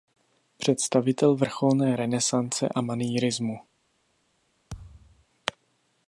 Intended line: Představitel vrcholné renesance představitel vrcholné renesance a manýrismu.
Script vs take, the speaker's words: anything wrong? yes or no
yes